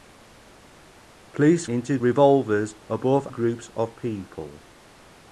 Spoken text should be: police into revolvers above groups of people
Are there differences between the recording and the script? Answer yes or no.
no